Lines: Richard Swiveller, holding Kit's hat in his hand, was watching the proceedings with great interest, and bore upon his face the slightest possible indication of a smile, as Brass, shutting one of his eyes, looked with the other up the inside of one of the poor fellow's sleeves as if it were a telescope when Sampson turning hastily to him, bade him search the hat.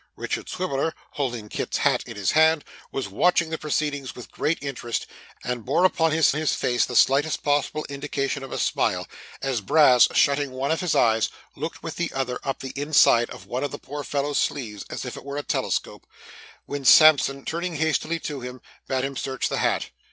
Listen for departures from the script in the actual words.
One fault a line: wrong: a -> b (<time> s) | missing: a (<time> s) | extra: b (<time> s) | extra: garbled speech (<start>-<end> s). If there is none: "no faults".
extra: his (6.3 s)